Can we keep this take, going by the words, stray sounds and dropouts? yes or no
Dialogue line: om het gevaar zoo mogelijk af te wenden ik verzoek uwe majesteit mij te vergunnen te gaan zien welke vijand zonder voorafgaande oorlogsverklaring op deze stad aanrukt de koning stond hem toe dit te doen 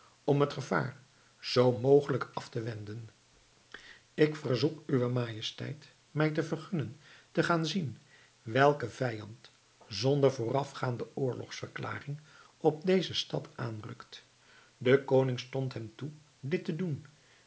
yes